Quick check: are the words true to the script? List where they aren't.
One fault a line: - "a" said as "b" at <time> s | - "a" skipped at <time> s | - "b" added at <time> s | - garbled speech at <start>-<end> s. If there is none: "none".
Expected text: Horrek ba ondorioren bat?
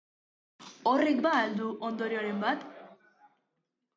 - "al du" added at 1.4 s